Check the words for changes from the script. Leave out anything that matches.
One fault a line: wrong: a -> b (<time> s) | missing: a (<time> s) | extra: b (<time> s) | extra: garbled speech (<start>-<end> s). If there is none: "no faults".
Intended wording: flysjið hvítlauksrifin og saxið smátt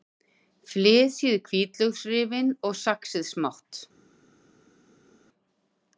no faults